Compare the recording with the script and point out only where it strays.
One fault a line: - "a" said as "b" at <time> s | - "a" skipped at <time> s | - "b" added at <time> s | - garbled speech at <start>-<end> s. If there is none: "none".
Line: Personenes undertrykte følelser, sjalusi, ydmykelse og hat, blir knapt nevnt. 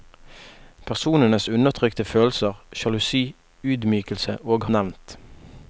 - "hat blir knapt" skipped at 4.7 s